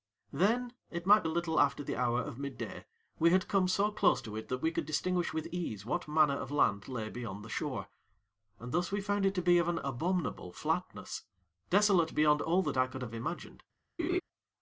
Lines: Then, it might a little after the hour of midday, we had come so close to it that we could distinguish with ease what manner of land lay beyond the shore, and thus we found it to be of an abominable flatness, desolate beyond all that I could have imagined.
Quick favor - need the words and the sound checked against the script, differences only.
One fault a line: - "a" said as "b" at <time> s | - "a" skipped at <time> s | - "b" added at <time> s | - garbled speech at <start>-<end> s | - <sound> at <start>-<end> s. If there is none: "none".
- laugh at 14.0-14.2 s